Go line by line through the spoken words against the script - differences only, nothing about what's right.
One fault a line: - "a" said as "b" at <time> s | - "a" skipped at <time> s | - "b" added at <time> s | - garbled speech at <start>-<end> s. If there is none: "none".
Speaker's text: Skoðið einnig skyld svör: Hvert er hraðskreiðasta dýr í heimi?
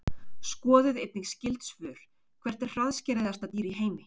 none